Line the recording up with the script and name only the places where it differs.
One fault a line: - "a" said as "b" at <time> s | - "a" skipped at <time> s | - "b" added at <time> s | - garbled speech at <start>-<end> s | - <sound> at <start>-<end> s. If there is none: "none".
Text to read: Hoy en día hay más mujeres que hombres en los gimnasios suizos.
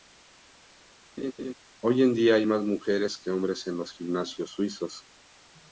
- laugh at 1.2-1.5 s